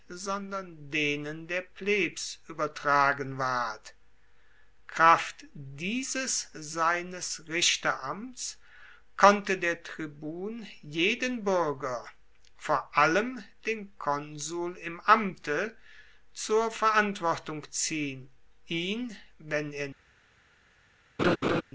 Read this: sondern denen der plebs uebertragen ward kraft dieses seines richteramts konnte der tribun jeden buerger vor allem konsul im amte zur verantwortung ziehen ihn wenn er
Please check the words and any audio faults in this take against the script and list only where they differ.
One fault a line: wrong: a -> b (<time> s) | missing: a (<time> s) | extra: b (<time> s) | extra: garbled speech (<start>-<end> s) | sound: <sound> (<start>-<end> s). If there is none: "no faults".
extra: den (13.7 s)
sound: laugh (21.2-21.6 s)